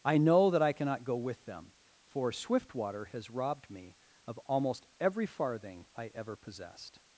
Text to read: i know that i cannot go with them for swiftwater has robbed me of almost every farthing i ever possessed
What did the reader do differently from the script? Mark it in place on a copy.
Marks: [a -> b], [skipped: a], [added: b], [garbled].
i know that i cannot go with them for swiftwater has robbed me of almost every farthing i ever possessed